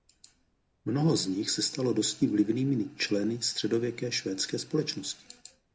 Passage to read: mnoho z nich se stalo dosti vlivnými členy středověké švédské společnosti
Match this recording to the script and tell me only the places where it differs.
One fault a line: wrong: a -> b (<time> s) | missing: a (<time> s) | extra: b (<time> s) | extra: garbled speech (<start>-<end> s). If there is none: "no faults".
no faults